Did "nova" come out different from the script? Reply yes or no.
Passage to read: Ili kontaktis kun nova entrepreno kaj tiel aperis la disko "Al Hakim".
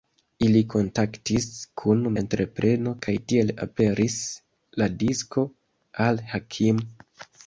yes